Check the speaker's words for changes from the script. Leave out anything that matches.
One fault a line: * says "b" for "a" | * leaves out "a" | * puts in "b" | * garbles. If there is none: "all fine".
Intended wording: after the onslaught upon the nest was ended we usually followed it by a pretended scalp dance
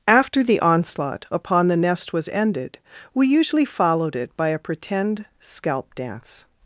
* says "pretend" for "pretended"